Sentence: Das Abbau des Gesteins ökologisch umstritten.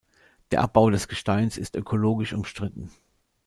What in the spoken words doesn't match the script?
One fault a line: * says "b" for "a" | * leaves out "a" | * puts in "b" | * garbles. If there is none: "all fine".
* says "Der" for "Das"
* puts in "ist"